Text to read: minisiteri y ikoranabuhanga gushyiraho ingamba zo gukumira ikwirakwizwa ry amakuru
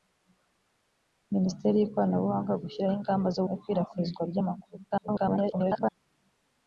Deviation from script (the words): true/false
true